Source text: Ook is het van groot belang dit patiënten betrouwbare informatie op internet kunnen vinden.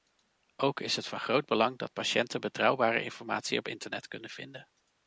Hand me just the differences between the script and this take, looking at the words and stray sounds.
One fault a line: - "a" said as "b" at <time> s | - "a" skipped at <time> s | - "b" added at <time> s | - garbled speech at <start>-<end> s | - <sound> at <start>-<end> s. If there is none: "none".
- "dit" said as "dat" at 1.8 s